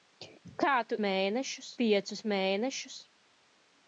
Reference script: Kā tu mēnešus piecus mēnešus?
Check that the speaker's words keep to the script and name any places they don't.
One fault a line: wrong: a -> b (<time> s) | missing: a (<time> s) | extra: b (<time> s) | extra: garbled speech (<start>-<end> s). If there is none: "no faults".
no faults